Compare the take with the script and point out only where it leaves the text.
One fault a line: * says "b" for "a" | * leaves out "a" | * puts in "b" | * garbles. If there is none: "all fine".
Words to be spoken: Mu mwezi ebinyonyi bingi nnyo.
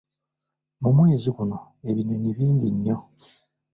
* puts in "guno"